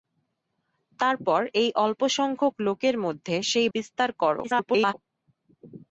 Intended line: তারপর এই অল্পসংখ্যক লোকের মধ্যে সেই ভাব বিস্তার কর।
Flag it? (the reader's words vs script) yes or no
yes